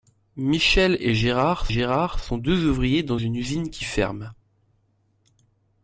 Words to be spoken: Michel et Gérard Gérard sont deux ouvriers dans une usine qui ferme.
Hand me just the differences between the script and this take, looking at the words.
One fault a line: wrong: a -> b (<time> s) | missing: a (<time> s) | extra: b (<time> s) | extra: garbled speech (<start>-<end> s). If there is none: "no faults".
no faults